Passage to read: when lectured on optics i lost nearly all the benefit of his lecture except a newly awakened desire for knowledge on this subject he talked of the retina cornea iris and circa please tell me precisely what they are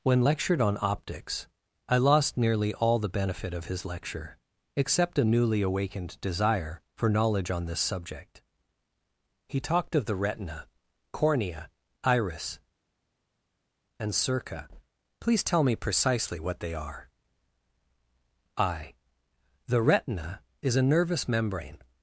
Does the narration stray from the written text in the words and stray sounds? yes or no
yes